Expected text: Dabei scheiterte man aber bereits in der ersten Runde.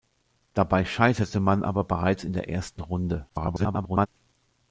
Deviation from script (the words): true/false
true